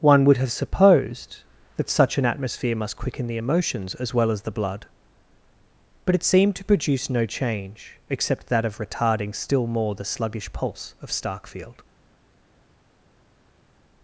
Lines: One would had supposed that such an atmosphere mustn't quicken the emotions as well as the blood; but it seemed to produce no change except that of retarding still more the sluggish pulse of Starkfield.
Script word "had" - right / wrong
wrong